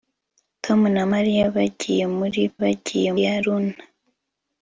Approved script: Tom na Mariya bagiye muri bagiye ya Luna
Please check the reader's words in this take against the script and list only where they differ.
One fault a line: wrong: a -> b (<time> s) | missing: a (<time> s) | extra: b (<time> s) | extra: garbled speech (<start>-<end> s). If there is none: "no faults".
no faults